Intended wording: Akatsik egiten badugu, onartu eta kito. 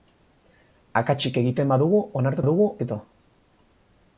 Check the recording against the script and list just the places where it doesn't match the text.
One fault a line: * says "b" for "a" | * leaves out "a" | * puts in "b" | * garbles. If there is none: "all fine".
* says "badugu" for "eta"